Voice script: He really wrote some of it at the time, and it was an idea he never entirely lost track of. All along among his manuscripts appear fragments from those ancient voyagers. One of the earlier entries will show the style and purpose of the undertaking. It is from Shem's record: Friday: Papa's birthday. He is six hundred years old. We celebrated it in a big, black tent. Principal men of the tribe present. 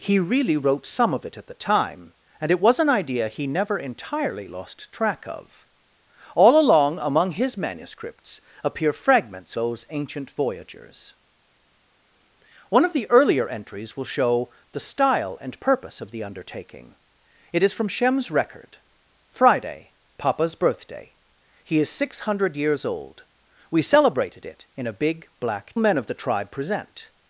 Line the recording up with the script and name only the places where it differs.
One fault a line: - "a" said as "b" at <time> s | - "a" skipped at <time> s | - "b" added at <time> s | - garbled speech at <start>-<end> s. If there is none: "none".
- "from" skipped at 9.5 s
- "tent Principal" skipped at 25.7 s